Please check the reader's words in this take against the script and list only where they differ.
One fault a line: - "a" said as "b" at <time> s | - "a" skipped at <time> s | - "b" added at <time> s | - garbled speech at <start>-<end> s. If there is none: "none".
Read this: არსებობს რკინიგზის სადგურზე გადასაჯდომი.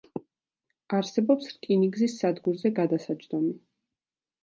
none